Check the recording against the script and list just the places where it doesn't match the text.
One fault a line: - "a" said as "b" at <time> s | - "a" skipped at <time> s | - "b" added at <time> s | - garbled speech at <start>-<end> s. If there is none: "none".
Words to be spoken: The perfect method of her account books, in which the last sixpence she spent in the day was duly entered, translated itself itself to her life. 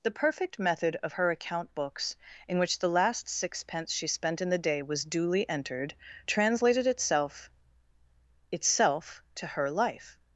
none